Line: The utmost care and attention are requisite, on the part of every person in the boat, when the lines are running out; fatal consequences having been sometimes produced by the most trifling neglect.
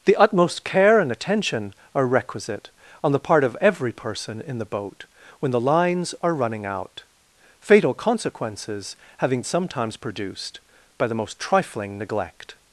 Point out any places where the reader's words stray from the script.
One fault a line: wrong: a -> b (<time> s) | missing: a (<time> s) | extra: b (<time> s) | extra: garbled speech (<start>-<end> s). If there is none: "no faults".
missing: been (9.4 s)